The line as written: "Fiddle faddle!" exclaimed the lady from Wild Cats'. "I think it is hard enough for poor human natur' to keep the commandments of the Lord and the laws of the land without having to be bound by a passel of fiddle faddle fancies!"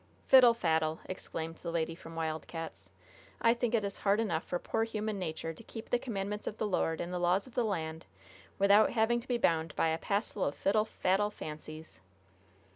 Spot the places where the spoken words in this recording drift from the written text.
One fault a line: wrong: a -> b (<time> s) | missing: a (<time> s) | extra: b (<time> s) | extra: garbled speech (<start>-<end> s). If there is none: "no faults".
no faults